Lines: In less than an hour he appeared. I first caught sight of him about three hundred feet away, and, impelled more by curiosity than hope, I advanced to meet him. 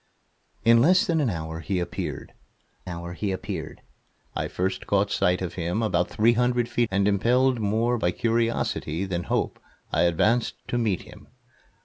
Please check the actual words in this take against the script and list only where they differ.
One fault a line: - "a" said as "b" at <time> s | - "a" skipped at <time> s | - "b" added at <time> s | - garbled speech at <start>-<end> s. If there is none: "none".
- "hour he appeared" added at 2.8 s
- "away" skipped at 6.9 s